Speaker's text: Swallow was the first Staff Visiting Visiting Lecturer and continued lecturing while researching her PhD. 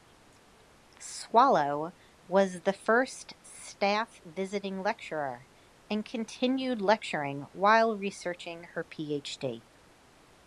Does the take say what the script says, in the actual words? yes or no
no